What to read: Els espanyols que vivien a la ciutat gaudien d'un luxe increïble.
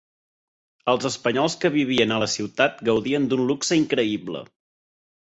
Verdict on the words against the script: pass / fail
pass